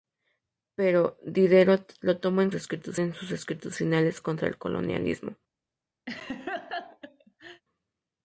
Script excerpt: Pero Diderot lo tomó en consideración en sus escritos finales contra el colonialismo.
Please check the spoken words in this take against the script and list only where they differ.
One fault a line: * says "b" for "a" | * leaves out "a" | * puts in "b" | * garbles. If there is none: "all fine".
* says "escritos" for "consideración"